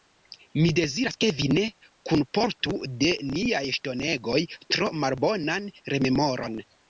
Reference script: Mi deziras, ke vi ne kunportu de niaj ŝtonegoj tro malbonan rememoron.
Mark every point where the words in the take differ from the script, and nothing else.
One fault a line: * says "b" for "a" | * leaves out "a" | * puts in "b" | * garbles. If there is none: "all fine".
all fine